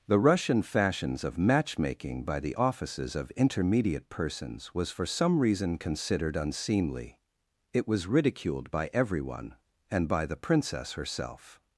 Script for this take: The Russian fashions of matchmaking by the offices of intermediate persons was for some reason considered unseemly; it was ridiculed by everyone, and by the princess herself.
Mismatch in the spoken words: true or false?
false